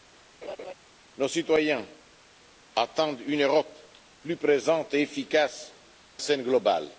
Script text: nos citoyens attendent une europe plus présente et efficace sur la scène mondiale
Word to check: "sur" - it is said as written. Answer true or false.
false